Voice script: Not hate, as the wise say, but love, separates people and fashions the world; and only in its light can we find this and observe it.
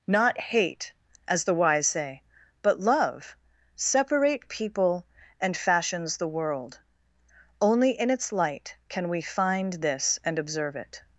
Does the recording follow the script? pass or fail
fail